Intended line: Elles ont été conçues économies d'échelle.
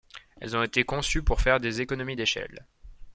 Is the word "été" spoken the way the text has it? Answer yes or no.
yes